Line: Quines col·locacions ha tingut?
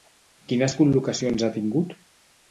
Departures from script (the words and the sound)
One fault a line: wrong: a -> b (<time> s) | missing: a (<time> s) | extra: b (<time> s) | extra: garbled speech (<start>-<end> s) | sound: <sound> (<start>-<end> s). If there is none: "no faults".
no faults